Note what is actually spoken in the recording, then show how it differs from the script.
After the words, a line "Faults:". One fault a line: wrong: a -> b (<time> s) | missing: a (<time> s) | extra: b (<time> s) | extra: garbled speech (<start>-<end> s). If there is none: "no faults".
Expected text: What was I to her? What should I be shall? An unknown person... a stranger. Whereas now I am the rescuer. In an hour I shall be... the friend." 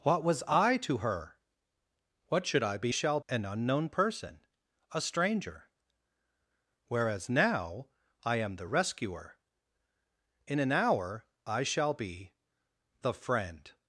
What was I to her? What should I be shall? An unknown person... a stranger. Whereas now I am the rescuer. In an hour I shall be... the friend."
Faults:
no faults